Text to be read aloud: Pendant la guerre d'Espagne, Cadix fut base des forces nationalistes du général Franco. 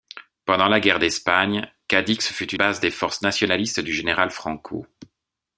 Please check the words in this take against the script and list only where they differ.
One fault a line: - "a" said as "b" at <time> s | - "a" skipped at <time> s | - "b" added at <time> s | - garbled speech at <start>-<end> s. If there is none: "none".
none